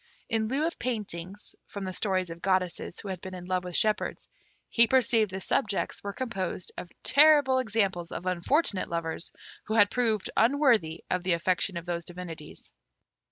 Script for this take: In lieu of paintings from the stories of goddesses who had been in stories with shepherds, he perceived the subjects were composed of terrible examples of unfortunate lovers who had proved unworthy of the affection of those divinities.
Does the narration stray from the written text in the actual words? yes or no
yes